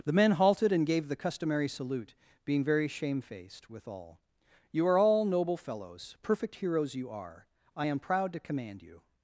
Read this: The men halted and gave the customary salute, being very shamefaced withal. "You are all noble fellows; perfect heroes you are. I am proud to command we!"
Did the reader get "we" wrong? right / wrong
wrong